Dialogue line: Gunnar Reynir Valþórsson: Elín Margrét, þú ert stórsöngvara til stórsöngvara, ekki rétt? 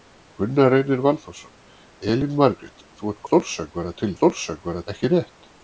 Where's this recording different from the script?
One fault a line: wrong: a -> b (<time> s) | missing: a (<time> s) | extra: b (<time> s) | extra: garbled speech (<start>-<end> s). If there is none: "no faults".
no faults